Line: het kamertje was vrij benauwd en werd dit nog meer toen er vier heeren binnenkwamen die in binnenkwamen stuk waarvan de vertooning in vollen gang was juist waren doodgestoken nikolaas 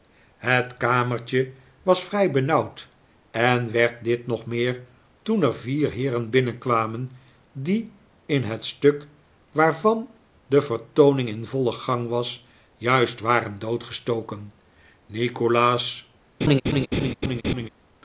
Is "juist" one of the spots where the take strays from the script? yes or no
no